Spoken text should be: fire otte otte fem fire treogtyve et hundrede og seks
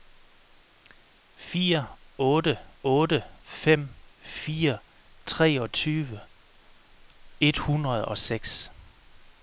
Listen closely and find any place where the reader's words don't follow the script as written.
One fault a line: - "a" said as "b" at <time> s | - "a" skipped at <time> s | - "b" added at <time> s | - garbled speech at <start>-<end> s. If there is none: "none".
none